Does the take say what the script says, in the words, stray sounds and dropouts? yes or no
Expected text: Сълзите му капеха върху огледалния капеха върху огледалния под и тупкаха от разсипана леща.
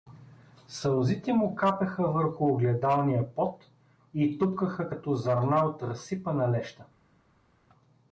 no